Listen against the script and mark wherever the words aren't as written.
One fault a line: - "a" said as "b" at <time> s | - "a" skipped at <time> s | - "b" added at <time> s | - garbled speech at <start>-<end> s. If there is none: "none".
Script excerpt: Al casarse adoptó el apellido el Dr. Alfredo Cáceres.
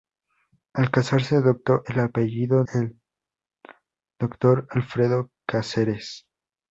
none